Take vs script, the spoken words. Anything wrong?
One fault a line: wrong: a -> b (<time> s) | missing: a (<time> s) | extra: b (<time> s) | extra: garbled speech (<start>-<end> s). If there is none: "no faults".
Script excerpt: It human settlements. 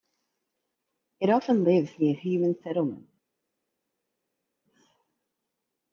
extra: often lives near (1.3 s)